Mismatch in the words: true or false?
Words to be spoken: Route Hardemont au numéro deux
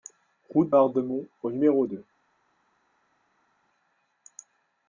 false